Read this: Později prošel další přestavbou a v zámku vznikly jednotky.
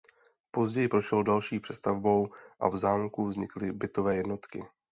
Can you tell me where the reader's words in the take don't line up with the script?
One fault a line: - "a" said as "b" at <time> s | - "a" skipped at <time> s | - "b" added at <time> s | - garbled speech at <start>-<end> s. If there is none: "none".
- "bytové" added at 3.7 s